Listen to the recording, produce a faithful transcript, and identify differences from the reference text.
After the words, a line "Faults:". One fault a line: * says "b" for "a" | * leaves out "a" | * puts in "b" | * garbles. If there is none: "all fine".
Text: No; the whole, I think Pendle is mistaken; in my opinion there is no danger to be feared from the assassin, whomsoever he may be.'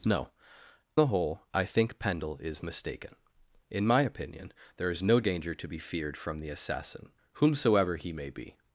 No; the whole, I think Pendle is mistaken; in my opinion there is no danger to be feared from the assassin, whomsoever he may be.'
Faults:
all fine